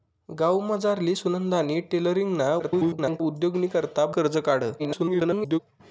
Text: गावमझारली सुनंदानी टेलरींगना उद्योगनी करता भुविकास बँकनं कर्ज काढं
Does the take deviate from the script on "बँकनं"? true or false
true